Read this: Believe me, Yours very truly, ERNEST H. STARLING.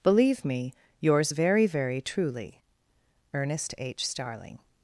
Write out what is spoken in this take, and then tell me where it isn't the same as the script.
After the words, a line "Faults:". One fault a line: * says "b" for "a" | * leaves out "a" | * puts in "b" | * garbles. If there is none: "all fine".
Believe me, Yours very very truly, ERNEST H. STARLING.
Faults:
* puts in "very"